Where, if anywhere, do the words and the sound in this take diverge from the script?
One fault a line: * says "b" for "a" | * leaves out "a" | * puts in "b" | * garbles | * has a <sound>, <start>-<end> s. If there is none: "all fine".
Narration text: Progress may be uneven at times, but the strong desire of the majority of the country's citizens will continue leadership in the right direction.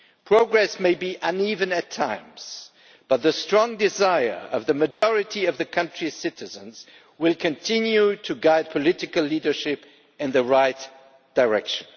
* has a dropout, 4.9-5.0 s
* puts in "to guide political"